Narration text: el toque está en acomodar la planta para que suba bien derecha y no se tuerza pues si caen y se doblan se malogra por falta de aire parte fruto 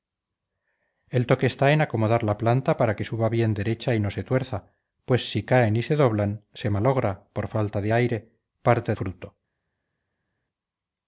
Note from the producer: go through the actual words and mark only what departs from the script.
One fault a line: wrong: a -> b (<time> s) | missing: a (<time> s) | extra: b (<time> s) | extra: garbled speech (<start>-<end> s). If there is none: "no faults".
no faults